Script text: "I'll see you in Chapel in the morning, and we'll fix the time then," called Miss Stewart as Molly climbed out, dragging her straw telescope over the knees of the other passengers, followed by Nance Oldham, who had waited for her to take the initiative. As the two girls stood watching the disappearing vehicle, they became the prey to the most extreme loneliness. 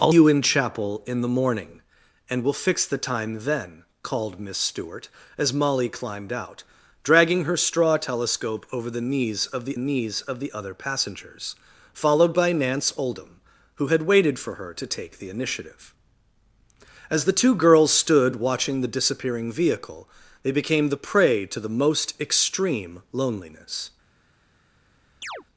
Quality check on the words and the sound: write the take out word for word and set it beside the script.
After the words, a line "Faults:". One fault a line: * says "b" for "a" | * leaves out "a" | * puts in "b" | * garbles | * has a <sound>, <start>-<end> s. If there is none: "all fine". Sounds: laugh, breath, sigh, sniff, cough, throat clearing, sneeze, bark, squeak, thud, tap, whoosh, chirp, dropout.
"I'll you in Chapel in the morning, and we'll fix the time then," called Miss Stewart as Molly climbed out, dragging her straw telescope over the knees of the knees of the other passengers, followed by Nance Oldham, who had waited for her to take the initiative. As the two girls stood watching the disappearing vehicle, they became the prey to the most extreme loneliness.
Faults:
* leaves out "see"
* puts in "knees of the"
* has a chirp, 25.2-25.4 s